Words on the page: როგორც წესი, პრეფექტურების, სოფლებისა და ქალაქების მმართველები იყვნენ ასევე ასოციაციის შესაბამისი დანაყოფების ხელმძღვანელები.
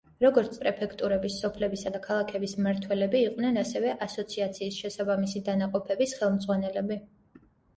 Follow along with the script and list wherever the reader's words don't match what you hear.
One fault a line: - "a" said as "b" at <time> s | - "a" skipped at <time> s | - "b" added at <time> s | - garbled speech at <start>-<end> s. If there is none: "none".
- "წესი" skipped at 0.6 s